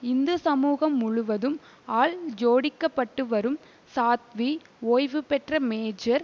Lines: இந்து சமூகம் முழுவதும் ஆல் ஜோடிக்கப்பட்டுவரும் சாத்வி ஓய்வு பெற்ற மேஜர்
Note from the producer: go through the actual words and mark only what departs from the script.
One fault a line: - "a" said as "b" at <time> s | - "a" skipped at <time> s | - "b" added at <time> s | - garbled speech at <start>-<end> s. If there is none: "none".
none